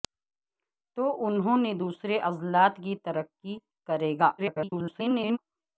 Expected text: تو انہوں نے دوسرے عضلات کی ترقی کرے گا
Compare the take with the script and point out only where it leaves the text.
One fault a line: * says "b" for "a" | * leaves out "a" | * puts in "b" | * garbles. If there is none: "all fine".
* garbles